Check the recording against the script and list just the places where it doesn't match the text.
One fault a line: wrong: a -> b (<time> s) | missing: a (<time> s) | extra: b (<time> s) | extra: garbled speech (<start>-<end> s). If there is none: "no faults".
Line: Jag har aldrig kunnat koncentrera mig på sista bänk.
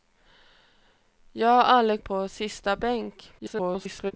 missing: kunnat koncentrera mig (2.0 s)
extra: garbled speech (3.4-4.1 s)